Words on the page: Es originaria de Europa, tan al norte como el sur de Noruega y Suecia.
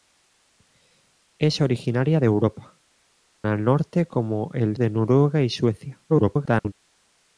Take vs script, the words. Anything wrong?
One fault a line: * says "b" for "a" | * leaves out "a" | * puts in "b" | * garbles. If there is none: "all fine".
* leaves out "tan"
* leaves out "sur"
* garbles